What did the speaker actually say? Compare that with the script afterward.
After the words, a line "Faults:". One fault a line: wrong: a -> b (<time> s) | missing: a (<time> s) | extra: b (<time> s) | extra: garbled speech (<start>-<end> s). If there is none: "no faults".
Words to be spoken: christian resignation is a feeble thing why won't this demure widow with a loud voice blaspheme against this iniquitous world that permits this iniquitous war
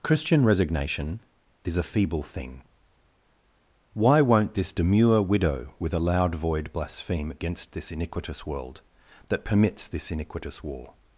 christian resignation is a feeble thing why won't this demure widow with a loud void blaspheme against this iniquitous world that permits this iniquitous war
Faults:
wrong: voice -> void (6.3 s)